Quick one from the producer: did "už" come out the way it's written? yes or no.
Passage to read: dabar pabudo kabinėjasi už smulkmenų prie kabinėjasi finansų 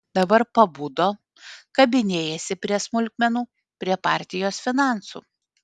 no